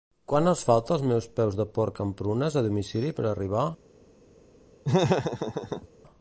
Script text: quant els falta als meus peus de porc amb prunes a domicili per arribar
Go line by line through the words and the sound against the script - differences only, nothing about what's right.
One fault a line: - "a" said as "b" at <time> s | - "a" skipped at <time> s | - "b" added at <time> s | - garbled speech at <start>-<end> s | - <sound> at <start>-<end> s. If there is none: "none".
- laugh at 4.8-5.9 s